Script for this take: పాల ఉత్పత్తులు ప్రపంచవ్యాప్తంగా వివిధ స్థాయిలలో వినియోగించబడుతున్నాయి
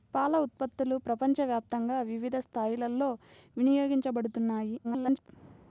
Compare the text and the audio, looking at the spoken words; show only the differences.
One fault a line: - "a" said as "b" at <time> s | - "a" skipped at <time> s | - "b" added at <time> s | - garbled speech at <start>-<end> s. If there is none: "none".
- garbled speech at 4.8-5.3 s